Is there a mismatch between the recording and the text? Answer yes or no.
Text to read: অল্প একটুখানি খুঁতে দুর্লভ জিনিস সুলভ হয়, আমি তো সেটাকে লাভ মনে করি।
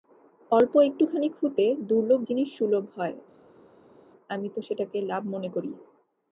no